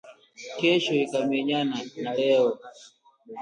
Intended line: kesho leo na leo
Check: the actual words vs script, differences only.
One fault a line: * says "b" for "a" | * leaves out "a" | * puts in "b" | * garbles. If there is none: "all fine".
* says "ikamenyana" for "leo"